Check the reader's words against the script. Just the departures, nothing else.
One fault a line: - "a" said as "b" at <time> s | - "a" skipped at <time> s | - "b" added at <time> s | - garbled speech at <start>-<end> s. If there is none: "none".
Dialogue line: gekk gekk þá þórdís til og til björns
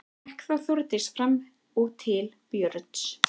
- "gekk" skipped at 0.5 s
- "til" said as "fram" at 1.2 s